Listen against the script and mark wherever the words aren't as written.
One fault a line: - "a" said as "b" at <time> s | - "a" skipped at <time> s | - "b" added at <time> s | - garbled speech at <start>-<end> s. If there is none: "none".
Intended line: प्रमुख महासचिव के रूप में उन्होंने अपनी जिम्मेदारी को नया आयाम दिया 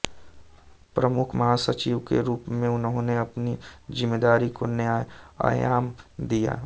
none